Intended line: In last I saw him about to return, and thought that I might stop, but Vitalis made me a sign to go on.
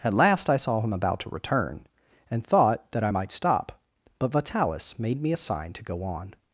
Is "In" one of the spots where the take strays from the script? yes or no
yes